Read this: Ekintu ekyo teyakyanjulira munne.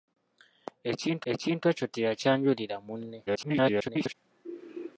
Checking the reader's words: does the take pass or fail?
fail